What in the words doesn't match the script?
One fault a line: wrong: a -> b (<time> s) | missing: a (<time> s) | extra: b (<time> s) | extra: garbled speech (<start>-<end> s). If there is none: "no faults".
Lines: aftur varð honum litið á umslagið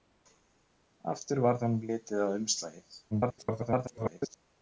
extra: garbled speech (3.1-4.4 s)